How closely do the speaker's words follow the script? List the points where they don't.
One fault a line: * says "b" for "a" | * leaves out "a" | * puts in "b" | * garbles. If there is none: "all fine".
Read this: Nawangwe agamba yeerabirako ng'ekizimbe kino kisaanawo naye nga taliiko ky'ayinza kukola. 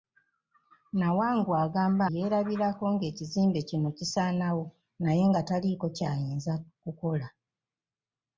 all fine